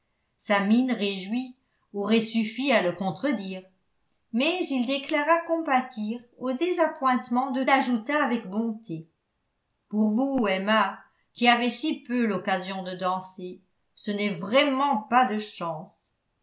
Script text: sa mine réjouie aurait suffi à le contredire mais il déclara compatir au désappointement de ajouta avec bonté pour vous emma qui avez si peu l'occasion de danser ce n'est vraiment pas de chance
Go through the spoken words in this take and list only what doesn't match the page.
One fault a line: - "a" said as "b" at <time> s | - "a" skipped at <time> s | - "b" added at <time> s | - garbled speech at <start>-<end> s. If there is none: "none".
none